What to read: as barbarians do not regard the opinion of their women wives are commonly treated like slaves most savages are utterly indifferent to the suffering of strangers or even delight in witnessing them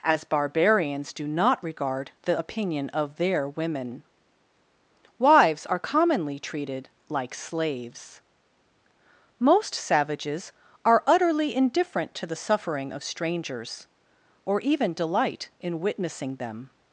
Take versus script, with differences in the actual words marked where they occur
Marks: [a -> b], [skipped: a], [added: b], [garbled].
as barbarians do not regard the opinion of their women wives are commonly treated like slaves most savages are utterly indifferent to the suffering of strangers or even delight in witnessing them